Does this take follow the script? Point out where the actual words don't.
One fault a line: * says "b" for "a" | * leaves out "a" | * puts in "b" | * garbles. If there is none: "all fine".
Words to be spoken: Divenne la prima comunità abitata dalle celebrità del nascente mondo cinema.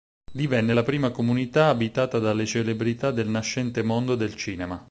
* puts in "del"